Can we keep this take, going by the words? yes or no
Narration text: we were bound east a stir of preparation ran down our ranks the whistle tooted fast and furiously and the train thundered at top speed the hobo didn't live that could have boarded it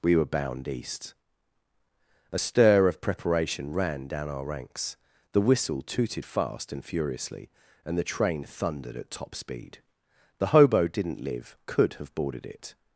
no